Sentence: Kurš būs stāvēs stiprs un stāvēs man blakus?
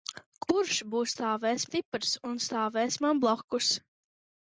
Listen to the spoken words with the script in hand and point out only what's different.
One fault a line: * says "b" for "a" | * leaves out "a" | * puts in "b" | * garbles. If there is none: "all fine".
all fine